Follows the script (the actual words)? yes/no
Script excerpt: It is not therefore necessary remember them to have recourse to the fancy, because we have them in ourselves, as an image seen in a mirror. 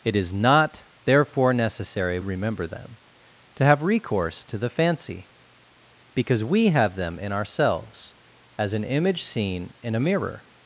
yes